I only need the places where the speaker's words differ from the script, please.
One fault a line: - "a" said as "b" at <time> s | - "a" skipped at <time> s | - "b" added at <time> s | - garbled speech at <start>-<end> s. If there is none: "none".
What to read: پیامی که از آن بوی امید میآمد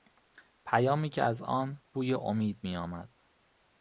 none